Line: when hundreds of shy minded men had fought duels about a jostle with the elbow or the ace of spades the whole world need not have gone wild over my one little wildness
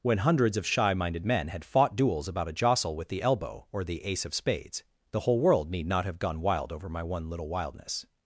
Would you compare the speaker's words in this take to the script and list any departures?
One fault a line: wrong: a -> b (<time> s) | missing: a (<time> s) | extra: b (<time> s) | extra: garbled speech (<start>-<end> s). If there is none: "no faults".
no faults